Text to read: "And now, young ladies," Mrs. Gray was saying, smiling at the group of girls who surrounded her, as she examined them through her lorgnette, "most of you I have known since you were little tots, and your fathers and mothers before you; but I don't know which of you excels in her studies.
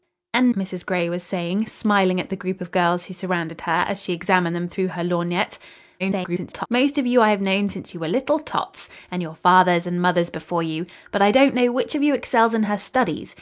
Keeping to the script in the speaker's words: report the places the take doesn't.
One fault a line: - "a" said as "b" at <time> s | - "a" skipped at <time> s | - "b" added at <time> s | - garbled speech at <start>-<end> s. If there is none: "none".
- "now young ladies" skipped at 0.5 s
- garbled speech at 6.0-6.7 s